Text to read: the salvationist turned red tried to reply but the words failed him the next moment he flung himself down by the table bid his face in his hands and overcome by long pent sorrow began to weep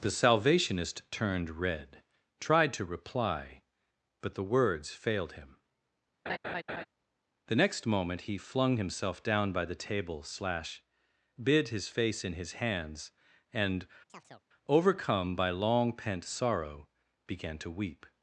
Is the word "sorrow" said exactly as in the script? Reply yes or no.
yes